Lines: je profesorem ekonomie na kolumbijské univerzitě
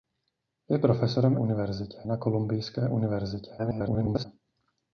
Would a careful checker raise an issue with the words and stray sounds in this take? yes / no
yes